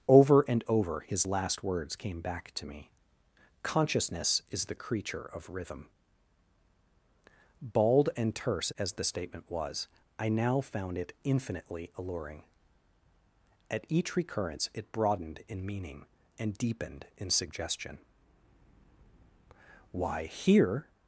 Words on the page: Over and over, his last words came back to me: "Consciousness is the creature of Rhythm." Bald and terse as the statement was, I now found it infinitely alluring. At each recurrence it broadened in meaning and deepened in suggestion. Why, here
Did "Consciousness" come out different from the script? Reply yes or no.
no